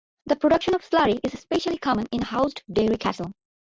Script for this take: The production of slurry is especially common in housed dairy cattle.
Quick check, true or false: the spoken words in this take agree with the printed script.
true